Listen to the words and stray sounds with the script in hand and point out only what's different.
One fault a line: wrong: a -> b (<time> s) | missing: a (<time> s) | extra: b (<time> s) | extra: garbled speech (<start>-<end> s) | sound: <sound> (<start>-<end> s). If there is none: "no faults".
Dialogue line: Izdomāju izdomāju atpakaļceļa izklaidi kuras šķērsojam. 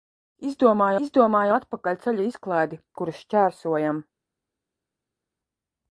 no faults